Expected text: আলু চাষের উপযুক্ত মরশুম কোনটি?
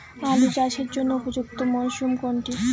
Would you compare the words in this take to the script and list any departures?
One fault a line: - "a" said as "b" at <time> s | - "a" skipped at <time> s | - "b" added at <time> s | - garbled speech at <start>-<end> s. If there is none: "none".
- "জন্য" added at 0.9 s